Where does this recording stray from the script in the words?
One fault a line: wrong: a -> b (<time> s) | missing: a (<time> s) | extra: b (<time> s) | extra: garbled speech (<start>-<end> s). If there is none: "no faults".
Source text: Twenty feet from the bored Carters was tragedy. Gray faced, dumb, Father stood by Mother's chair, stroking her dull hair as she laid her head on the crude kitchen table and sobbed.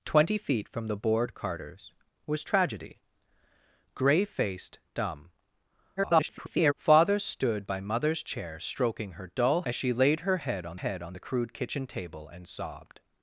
extra: garbled speech (6.0-6.7 s)
missing: hair (9.6 s)
extra: head on (10.7 s)